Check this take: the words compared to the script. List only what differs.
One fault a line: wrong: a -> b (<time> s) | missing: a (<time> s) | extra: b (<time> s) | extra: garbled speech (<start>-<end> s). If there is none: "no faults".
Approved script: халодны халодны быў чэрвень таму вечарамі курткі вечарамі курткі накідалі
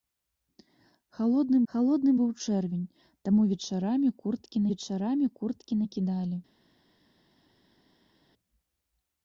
no faults